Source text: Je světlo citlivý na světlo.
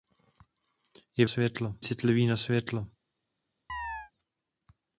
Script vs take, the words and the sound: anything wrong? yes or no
yes